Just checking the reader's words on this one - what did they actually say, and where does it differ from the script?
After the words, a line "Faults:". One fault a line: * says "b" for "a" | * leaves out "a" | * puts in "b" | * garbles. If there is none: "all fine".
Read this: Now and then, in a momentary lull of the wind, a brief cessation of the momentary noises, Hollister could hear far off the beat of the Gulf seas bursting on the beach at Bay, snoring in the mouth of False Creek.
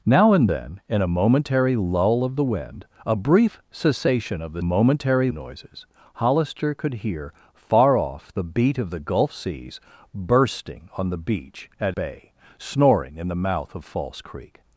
Now and then, in a momentary lull of the wind, a brief cessation of the momentary noises, Hollister could hear far off the beat of the Gulf seas bursting on the beach at Bay, snoring in the mouth of False Creek.
Faults:
all fine